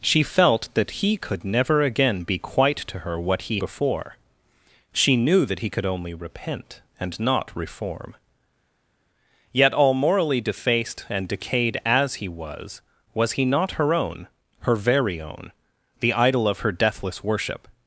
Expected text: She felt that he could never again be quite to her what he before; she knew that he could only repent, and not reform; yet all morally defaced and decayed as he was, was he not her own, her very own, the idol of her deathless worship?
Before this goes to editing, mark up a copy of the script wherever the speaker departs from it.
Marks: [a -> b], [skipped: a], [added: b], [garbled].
She felt that he could never again be quite to her what he before; she knew that he could only repent, and not reform; yet all morally defaced and decayed as he was, was he not her own, her very own, the idol of her deathless worship?